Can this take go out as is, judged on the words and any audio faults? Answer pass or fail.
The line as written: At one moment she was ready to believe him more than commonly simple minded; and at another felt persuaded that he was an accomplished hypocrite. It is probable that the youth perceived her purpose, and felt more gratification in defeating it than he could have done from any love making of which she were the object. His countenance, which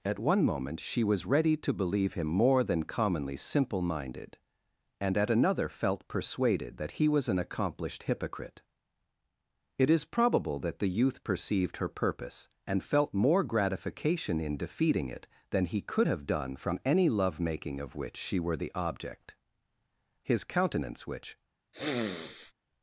fail